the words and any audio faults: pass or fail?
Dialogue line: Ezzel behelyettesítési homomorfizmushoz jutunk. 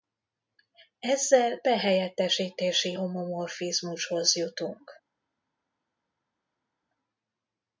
pass